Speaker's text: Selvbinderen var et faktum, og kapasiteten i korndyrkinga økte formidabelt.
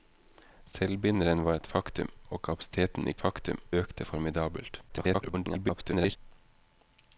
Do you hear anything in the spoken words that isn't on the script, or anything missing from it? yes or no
yes